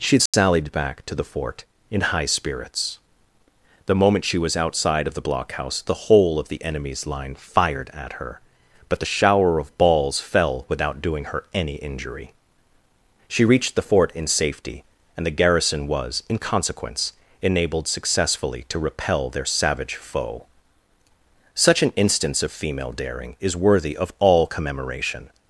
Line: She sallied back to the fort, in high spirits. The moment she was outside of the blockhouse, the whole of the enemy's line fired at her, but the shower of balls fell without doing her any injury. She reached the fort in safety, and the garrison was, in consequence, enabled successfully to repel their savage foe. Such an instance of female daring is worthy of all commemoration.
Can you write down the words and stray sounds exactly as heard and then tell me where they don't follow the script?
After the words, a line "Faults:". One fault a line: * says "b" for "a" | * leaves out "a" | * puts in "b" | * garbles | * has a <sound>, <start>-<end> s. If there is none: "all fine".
She sallied back to the fort, in high spirits. The moment she was outside of the blockhouse, the whole of the enemy's line fired at her, but the shower of balls fell without doing her any injury. She reached the fort in safety, and the garrison was, in consequence, enabled successfully to repel their savage foe. Such an instance of female daring is worthy of all commemoration.
Faults:
* has a dropout, 0.3-0.3 s